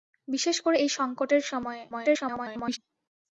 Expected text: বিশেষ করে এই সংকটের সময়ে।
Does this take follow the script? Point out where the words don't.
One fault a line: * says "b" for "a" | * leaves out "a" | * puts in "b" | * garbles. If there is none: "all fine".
* garbles